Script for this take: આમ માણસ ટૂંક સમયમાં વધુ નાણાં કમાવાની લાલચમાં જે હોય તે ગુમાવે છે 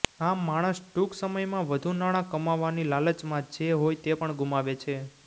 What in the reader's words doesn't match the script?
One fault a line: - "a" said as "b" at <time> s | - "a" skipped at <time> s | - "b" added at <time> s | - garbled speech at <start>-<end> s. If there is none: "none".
- "પણ" added at 4.2 s